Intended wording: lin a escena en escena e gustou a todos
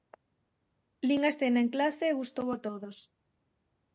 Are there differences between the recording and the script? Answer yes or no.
yes